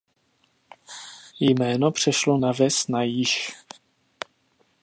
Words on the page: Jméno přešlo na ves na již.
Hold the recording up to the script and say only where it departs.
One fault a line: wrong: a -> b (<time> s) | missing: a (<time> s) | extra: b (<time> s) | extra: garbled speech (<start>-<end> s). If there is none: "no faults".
no faults